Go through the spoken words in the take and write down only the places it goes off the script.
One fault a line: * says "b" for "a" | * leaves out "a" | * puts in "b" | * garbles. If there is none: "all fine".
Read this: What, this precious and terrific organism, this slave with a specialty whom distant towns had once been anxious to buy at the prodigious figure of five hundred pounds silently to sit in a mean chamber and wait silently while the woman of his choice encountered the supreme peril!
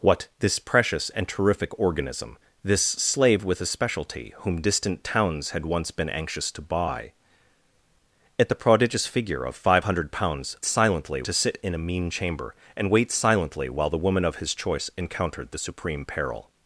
all fine